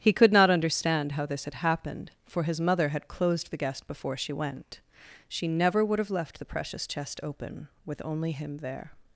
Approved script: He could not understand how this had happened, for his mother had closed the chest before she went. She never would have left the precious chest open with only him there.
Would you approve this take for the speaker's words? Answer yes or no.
no